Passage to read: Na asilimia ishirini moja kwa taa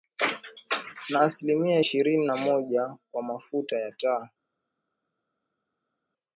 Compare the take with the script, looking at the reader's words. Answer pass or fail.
fail